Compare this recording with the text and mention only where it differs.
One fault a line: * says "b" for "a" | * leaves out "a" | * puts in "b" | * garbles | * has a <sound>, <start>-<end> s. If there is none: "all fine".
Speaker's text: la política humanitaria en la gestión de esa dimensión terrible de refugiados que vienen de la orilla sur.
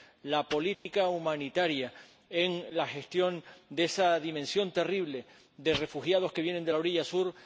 * has a dropout, 0.7-0.9 s